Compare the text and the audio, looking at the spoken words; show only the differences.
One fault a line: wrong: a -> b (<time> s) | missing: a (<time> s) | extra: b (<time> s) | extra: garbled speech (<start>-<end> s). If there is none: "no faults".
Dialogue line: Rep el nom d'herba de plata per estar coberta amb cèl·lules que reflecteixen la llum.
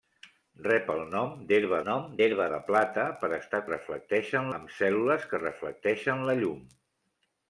extra: nom d'herba (1.8 s)
wrong: coberta -> reflecteixen (3.7 s)